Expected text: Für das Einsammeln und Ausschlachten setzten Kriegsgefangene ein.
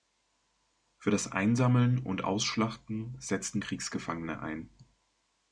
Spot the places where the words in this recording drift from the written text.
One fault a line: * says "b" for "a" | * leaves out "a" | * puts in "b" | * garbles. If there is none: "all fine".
all fine